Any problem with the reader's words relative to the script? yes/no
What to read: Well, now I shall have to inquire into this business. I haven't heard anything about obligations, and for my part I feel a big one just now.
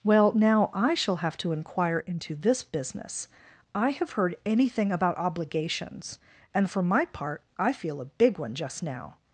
yes